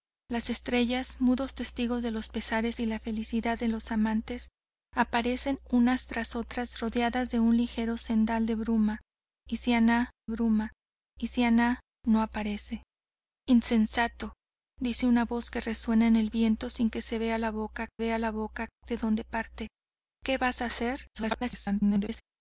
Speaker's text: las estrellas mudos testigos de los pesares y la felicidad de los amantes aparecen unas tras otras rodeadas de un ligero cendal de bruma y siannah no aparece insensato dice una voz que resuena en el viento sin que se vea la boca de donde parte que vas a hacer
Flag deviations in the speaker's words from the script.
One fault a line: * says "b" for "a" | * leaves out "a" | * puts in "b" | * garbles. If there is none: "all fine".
* puts in "bruma y siannah"
* puts in "vea la boca"
* garbles